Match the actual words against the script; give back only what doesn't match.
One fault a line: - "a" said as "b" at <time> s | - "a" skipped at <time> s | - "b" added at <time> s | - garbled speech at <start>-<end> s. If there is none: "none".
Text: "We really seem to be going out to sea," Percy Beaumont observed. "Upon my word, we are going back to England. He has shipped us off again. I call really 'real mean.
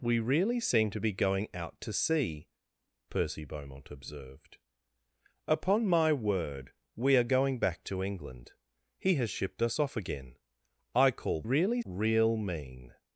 none